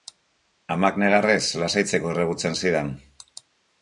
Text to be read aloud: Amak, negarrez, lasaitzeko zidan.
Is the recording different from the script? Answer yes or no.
yes